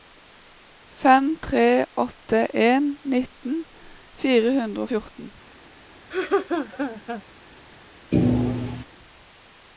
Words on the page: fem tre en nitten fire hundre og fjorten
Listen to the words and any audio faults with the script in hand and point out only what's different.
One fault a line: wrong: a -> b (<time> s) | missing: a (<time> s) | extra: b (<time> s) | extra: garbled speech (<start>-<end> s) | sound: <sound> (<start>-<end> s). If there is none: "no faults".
extra: åtte (2.0 s)
sound: laugh (6.1-7.2 s)
sound: thud (8.1-8.8 s)